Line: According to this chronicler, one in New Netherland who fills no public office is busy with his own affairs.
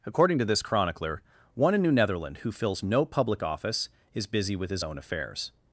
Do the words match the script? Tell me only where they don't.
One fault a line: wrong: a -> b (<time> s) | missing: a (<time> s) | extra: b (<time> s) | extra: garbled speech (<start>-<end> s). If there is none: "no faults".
no faults